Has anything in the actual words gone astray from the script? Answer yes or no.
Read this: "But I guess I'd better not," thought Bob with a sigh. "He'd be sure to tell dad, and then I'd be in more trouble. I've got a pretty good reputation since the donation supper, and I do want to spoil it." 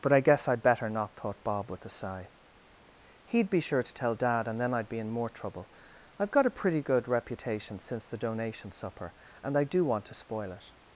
no